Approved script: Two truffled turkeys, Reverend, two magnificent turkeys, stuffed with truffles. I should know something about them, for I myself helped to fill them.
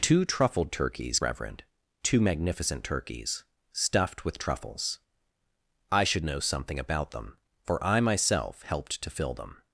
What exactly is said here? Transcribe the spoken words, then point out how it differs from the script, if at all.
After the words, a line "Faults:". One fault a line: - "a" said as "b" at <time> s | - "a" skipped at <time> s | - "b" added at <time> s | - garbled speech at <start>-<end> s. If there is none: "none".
Two truffled turkeys, Reverend, two magnificent turkeys, stuffed with truffles. I should know something about them, for I myself helped to fill them.
Faults:
none